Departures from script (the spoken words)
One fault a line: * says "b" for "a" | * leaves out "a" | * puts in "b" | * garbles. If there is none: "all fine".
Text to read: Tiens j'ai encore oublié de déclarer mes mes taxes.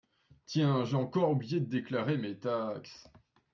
* leaves out "mes"